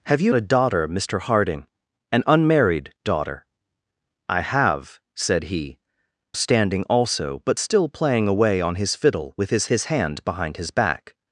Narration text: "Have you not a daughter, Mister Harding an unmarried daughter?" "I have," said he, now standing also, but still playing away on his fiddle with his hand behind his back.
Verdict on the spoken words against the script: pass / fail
fail